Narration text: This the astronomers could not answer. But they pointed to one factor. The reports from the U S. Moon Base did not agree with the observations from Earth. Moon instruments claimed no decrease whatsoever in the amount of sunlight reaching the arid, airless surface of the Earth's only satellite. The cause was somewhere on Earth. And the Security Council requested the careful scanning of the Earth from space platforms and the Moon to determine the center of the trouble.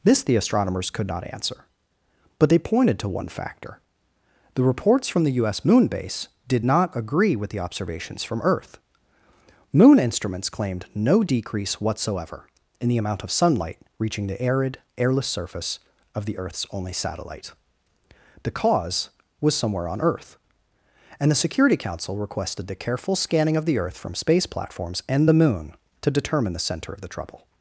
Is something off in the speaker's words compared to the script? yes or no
no